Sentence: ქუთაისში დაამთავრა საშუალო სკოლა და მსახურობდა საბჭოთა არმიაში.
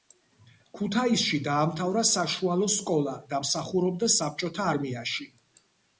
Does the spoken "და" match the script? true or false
true